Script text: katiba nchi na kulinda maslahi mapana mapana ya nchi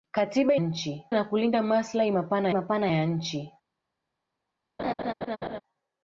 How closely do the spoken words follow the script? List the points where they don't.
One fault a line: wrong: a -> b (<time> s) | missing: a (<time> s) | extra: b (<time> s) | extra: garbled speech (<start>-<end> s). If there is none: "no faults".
no faults